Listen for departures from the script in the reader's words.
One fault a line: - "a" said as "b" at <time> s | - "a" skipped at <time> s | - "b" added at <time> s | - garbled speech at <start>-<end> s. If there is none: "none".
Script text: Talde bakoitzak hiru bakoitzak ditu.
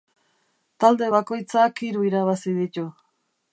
- "bakoitzak" said as "irabazi" at 2.1 s